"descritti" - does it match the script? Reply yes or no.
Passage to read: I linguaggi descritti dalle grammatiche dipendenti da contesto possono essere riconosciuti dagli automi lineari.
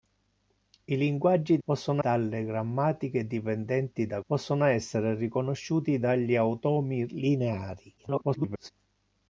no